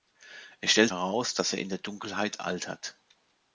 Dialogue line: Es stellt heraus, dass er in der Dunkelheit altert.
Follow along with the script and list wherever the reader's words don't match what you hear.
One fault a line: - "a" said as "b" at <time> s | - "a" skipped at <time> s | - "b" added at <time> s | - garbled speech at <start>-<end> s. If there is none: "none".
none